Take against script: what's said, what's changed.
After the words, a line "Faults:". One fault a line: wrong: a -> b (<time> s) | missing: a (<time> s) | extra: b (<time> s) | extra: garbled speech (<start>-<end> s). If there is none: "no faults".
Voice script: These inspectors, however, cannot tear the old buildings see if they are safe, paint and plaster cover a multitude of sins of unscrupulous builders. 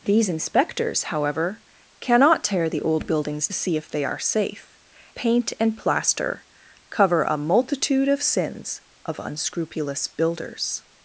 These inspectors, however, cannot tear the old buildings see if they are safe, paint and plaster cover a multitude of sins of unscrupulous builders.
Faults:
no faults